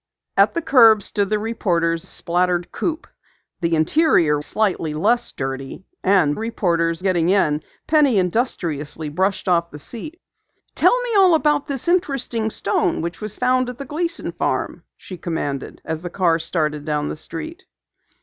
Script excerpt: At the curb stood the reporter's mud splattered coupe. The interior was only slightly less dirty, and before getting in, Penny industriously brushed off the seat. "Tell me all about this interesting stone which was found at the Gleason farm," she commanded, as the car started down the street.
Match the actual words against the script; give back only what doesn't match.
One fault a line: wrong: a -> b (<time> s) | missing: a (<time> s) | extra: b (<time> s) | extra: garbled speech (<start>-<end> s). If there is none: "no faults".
missing: mud (2.1 s)
missing: was only (4.4 s)
wrong: before -> reporter's (6.3 s)